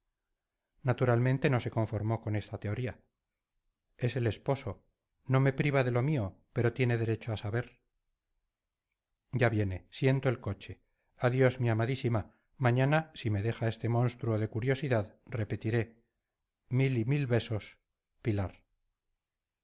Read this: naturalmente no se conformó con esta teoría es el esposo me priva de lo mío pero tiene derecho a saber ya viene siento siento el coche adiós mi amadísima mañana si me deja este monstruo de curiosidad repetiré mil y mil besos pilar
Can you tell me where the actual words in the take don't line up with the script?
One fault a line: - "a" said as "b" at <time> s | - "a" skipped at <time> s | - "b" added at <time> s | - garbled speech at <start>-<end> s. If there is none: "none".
- "no" added at 5.2 s
- "siento" skipped at 10.3 s